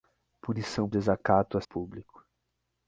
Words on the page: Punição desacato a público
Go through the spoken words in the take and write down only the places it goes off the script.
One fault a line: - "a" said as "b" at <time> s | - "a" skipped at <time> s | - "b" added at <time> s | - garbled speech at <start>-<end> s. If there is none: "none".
none